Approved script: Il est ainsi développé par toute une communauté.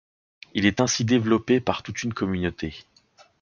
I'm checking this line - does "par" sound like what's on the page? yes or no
yes